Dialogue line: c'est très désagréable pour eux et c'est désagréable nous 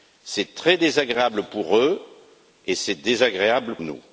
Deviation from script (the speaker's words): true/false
false